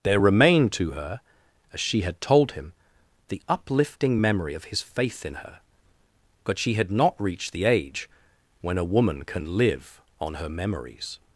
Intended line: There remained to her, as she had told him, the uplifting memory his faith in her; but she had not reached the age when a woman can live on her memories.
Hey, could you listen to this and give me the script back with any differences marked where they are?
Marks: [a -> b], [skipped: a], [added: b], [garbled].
There remained to her, as she had told him, the uplifting memory [added: of] his faith in her; but she had not reached the age when a woman can live on her memories.